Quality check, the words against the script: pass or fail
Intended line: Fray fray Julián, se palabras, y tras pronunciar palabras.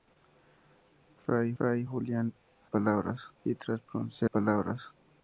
pass